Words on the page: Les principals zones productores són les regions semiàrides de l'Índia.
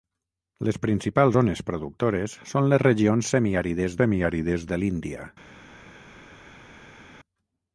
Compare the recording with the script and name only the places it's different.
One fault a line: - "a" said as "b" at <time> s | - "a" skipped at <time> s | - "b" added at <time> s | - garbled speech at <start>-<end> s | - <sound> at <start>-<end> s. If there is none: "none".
- "semiàrides" added at 4.0 s